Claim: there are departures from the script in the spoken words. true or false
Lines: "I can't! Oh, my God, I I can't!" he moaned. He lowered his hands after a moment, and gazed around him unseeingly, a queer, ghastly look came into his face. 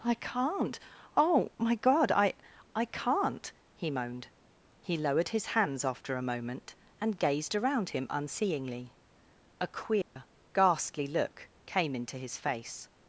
false